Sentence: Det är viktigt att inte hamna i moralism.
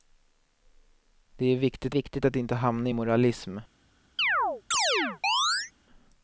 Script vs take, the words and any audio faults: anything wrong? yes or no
yes